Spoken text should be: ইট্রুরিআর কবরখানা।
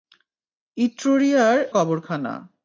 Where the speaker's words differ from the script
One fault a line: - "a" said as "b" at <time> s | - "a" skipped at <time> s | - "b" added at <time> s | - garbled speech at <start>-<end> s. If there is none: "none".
none